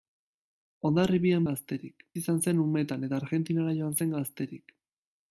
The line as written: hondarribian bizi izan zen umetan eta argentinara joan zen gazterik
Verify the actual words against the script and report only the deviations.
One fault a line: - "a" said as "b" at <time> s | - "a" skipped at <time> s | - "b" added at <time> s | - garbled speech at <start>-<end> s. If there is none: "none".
- "bizi" said as "gazterik" at 1.5 s